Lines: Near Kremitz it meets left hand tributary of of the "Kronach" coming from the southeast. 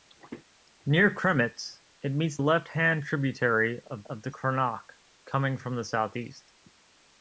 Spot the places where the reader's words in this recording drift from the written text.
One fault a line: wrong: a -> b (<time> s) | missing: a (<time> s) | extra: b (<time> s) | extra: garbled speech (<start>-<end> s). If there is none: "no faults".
no faults